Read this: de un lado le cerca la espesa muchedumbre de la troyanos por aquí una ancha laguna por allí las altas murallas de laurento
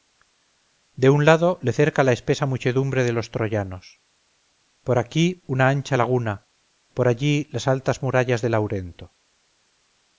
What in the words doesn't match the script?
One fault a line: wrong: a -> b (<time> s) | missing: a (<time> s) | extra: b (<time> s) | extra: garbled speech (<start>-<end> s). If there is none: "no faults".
wrong: la -> los (3.1 s)